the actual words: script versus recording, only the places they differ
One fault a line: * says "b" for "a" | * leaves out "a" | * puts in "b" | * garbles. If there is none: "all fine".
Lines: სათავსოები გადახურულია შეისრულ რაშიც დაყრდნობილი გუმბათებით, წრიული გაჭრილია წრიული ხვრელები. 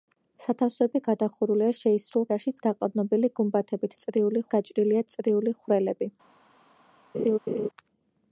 all fine